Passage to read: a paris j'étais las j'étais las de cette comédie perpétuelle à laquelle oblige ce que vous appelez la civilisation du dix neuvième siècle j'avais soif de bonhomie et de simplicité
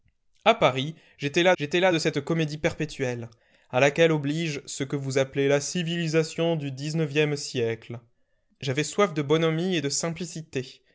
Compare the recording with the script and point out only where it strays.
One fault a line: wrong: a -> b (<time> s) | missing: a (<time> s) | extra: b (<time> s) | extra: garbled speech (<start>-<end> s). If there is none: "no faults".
no faults